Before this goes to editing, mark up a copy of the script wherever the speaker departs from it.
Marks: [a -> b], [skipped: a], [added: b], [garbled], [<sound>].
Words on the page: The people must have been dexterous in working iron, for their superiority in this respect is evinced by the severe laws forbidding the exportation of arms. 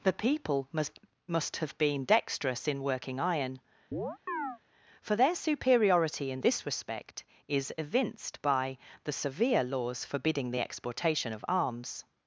The people must [added: must] have been dexterous in working iron, [chirp] for their superiority in this respect is evinced by the severe laws forbidding the exportation of arms.